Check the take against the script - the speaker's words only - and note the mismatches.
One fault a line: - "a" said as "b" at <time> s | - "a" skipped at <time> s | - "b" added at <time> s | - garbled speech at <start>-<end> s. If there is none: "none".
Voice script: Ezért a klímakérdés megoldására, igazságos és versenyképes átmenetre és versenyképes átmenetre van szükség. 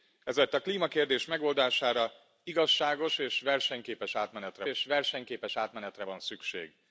none